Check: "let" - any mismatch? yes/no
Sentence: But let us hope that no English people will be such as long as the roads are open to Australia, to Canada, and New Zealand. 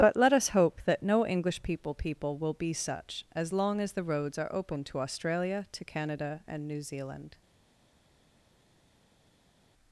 no